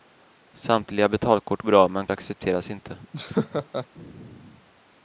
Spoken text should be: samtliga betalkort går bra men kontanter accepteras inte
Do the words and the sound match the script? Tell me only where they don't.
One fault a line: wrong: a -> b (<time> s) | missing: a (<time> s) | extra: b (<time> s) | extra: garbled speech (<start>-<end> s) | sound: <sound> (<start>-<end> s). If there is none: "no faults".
missing: går (1.6 s)
missing: kontanter (2.1 s)
sound: laugh (3.1-3.9 s)